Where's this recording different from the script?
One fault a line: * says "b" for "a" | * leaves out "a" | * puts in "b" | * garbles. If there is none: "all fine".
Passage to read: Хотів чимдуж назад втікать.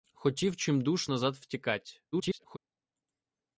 * garbles